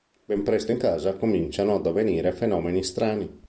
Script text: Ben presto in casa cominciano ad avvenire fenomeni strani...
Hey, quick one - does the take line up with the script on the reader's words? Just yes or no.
yes